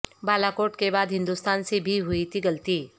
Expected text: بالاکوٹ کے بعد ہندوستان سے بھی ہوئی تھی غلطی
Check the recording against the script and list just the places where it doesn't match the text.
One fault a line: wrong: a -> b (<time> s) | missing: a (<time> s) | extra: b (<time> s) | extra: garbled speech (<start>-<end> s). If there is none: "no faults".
no faults